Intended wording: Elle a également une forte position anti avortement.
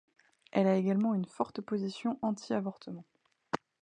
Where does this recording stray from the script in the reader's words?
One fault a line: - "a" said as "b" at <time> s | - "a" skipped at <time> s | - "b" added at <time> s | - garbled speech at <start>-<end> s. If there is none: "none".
none